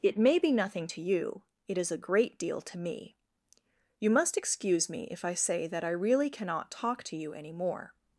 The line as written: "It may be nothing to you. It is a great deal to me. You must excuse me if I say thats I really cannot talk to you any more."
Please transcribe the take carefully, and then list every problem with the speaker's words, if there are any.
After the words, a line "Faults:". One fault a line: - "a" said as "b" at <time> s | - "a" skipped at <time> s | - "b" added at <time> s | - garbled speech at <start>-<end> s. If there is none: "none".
"It may be nothing to you. It is a great deal to me. You must excuse me if I say that I really cannot talk to you any more."
Faults:
- "thats" said as "that" at 5.7 s